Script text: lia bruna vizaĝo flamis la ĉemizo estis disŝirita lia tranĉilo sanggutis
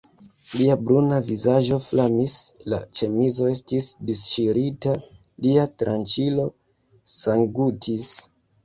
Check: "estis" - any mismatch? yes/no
no